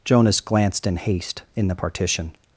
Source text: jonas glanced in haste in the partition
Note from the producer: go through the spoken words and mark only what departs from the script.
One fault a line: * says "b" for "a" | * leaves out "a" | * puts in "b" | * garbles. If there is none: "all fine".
all fine